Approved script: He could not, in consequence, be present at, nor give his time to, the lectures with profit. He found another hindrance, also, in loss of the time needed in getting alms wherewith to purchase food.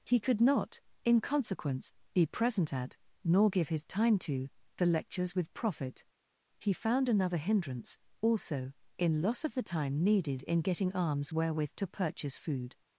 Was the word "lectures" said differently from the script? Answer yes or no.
no